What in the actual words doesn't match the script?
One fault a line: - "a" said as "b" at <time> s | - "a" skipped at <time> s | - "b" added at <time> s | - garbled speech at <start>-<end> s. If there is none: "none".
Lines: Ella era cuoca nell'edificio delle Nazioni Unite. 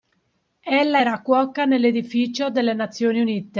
none